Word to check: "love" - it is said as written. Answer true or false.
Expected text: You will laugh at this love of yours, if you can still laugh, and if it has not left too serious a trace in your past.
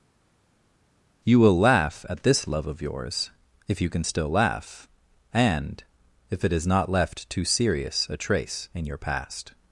true